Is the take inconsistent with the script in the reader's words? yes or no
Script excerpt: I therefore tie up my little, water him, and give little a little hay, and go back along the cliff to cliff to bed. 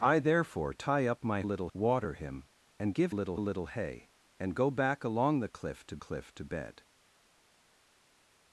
no